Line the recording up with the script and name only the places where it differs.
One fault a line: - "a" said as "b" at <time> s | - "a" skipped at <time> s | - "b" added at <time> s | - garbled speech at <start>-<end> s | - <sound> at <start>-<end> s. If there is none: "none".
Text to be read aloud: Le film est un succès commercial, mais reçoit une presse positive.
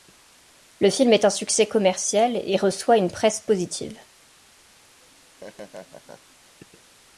- "mais" said as "et" at 2.4 s
- laugh at 5.0-6.4 s